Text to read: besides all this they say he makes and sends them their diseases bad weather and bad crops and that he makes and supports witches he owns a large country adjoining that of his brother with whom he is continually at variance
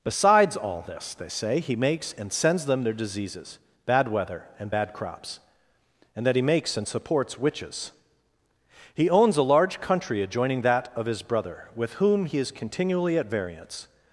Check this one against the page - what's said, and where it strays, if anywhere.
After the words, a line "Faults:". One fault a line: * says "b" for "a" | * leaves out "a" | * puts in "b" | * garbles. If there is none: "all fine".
besides all this they say he makes and sends them their diseases bad weather and bad crops and that he makes and supports witches he owns a large country adjoining that of his brother with whom he is continually at variance
Faults:
all fine